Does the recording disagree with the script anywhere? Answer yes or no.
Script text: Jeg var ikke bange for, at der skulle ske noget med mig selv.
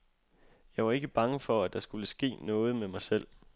no